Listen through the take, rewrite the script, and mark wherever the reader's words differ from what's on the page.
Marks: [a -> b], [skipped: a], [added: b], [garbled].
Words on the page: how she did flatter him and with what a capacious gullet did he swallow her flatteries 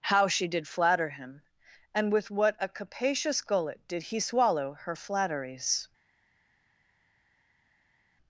how she did flatter him and with what a capacious gullet did he swallow her flatteries